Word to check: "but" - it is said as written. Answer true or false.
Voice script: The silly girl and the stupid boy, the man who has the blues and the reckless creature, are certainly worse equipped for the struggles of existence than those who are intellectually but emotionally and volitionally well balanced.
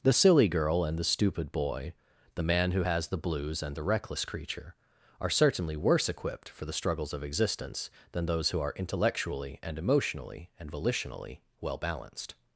false